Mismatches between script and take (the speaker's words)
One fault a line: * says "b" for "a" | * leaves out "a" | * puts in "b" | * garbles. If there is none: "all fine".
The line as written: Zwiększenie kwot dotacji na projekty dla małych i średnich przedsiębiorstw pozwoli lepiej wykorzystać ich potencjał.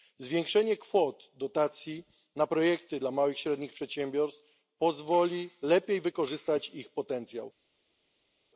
all fine